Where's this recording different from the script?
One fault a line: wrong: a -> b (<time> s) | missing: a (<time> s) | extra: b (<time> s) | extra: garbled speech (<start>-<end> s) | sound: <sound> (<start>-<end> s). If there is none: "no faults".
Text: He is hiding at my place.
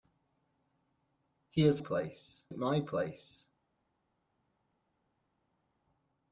wrong: hiding -> place (1.8 s)